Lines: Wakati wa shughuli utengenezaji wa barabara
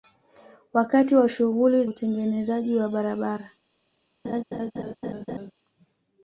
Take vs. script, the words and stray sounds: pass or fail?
fail